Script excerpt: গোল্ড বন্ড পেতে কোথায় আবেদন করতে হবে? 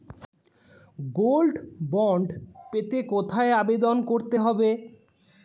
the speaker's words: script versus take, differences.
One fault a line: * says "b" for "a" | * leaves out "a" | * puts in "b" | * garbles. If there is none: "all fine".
all fine